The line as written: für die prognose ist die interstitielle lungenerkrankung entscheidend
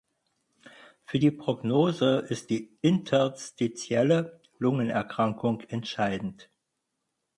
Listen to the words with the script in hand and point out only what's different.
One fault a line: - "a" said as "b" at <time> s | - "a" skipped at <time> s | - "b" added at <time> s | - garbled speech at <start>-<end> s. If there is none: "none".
none